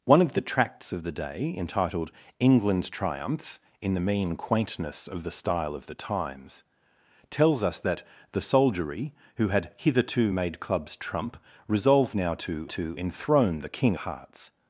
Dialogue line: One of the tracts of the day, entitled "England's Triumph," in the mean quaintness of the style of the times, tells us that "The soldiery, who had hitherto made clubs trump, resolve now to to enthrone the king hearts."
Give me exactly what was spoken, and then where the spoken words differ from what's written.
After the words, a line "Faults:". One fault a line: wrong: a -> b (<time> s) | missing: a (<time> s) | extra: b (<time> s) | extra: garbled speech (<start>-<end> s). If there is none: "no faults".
One of the tracts of the day, entitled "England's Triumph," in the mean quaintness of the style of the times, tells us that "The soldiery, who had hitherto made clubs trump, resolve now to to enthrone the king hearts."
Faults:
no faults